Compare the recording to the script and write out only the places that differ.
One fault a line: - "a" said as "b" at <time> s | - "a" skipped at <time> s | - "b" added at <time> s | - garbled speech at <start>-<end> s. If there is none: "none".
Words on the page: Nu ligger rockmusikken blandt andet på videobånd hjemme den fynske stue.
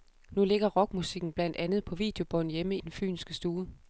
none